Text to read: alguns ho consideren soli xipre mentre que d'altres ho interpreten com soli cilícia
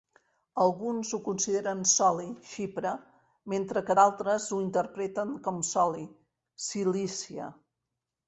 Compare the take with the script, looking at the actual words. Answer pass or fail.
pass